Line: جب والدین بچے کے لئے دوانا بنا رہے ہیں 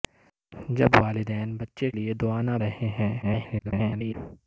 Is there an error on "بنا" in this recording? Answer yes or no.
yes